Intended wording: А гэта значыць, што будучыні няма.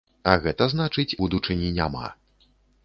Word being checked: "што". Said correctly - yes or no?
no